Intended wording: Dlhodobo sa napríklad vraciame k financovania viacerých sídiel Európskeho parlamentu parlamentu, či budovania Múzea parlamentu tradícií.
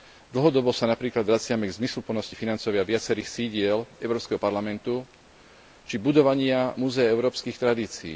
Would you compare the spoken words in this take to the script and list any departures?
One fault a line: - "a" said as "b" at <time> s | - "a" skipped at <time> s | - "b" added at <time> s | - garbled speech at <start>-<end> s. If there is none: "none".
- "zmysluplnosti" added at 1.8 s
- "parlamentu" skipped at 5.0 s
- "parlamentu" said as "európskych" at 7.1 s